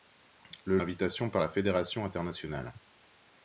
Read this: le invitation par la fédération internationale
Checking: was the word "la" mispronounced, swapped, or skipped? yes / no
no